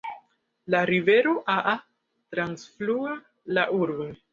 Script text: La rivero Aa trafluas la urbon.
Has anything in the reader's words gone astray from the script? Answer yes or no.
no